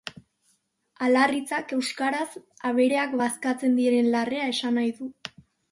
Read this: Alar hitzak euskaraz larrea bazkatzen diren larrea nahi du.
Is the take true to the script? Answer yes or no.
no